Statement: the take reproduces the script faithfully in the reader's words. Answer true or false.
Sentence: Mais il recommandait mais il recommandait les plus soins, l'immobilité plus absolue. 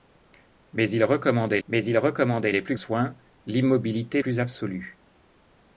true